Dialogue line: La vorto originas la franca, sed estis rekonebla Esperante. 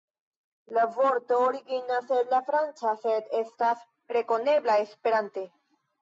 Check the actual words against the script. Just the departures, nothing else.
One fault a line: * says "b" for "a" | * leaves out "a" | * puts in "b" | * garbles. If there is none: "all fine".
* puts in "el"
* says "estas" for "estis"